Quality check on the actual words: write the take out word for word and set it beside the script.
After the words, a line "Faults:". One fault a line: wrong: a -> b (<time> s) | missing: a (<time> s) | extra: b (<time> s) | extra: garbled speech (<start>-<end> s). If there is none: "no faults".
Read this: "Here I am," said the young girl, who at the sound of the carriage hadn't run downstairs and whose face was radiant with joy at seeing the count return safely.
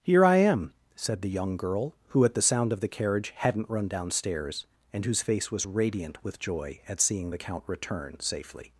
"Here I am," said the young girl, who at the sound of the carriage hadn't run downstairs and whose face was radiant with joy at seeing the count return safely.
Faults:
no faults